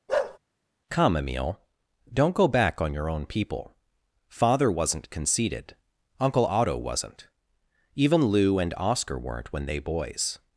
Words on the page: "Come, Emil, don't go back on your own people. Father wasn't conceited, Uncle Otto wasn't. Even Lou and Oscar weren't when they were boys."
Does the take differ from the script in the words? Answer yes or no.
yes